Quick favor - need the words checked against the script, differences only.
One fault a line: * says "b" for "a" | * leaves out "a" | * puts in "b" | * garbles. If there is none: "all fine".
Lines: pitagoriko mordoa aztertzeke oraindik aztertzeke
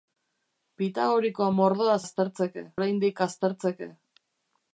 all fine